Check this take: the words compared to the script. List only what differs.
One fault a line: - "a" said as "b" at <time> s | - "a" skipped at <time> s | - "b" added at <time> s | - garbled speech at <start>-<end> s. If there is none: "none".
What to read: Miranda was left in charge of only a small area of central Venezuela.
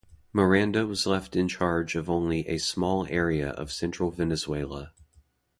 none